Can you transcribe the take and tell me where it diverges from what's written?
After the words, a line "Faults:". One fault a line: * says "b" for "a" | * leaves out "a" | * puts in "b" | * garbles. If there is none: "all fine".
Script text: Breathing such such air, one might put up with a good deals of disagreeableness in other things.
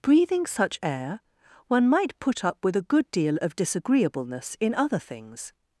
Breathing such air, one might put up with a good deal of disagreeableness in other things.
Faults:
* leaves out "such"
* says "deal" for "deals"